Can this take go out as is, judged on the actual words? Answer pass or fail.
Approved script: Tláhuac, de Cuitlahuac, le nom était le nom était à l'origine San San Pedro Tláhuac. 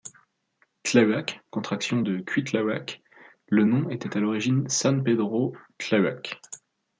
fail